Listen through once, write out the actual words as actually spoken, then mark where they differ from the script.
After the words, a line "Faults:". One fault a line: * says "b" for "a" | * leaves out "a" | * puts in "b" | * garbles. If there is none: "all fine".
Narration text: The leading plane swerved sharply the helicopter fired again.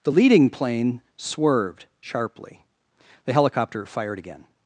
The leading plane swerved sharply the helicopter fired again.
Faults:
all fine